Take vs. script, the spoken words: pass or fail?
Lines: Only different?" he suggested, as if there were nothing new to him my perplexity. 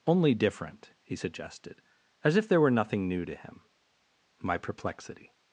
pass